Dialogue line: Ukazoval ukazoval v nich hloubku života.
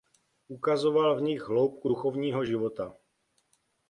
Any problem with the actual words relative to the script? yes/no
yes